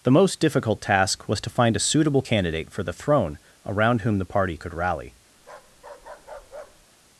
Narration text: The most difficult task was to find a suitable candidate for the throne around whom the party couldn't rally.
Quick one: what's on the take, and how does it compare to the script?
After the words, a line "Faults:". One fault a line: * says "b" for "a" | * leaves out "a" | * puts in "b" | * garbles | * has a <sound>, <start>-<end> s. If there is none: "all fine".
The most difficult task was to find a suitable candidate for the throne around whom the party could rally.
Faults:
* says "could" for "couldn't"
* has a bark, 5.4-6.9 s